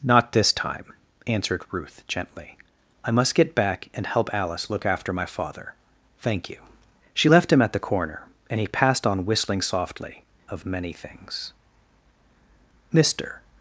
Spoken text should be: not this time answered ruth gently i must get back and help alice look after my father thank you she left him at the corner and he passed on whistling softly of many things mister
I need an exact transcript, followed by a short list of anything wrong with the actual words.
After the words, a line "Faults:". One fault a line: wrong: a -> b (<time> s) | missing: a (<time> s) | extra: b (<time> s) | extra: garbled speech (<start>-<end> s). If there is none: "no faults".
not this time answered ruth gently i must get back and help alice look after my father thank you she left him at the corner and he passed on whistling softly of many things mister
Faults:
no faults